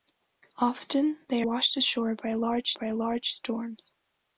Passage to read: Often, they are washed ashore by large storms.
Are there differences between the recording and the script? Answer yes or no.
yes